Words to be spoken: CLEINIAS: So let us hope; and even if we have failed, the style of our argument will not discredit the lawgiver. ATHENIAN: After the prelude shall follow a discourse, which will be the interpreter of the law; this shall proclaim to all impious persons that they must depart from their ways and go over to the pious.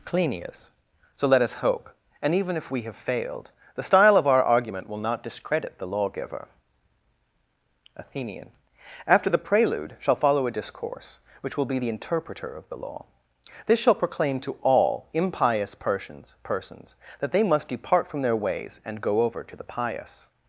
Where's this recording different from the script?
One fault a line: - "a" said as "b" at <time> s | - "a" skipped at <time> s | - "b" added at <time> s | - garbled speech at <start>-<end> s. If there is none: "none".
- "persons" added at 16.4 s